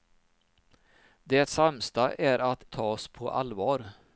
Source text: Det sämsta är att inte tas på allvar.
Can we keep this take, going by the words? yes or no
no